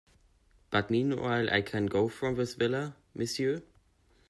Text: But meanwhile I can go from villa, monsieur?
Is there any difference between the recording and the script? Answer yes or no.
yes